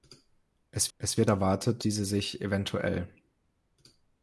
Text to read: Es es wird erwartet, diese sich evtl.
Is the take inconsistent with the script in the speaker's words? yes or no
no